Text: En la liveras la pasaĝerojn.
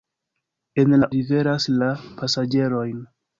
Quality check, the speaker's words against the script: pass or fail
pass